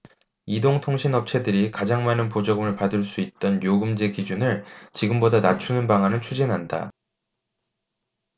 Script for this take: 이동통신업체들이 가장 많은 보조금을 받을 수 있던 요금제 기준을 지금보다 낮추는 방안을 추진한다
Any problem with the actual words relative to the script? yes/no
no